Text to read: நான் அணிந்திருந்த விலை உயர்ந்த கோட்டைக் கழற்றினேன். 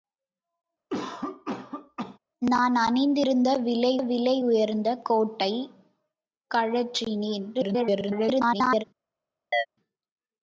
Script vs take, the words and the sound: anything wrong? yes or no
yes